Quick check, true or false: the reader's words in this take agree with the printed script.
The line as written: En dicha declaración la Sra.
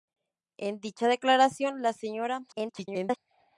false